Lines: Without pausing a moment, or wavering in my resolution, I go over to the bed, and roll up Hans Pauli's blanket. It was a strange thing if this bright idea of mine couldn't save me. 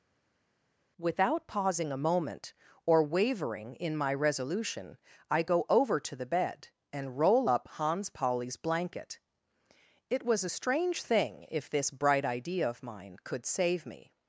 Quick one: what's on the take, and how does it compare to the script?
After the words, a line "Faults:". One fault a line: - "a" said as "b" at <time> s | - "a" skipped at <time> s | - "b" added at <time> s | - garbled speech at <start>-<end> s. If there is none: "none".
Without pausing a moment, or wavering in my resolution, I go over to the bed, and roll up Hans Pauli's blanket. It was a strange thing if this bright idea of mine could save me.
Faults:
- "couldn't" said as "could" at 13.2 s